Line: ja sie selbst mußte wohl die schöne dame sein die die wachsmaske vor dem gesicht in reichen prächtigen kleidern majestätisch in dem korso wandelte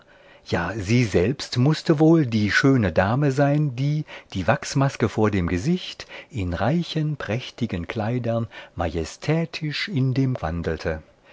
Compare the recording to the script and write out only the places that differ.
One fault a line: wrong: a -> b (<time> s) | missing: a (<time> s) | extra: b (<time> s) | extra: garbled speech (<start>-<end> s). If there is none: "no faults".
missing: korso (10.3 s)